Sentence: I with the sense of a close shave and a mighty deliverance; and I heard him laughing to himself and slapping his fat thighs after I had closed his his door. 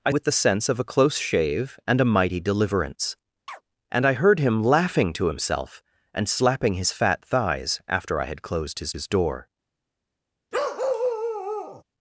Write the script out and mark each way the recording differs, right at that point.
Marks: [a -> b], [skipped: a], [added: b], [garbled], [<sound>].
I with the sense of a close shave and a mighty deliverance; [chirp] and I heard him laughing to himself and slapping his fat thighs after I had closed his his door. [bark]